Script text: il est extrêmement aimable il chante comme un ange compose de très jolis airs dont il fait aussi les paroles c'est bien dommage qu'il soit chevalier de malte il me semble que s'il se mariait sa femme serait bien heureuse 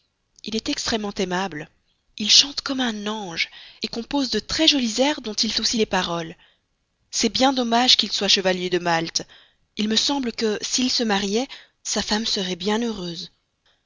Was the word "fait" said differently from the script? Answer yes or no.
yes